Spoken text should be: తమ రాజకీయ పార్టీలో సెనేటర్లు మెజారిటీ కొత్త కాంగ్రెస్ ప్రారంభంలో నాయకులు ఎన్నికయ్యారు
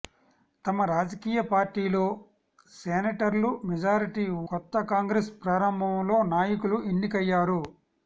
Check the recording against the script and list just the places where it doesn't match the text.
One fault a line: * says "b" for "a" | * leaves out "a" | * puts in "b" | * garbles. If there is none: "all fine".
all fine